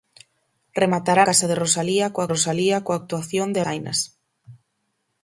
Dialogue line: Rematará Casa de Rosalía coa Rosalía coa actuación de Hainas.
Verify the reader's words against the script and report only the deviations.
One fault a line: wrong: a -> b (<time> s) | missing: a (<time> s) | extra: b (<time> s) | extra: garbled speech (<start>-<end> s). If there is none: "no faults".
no faults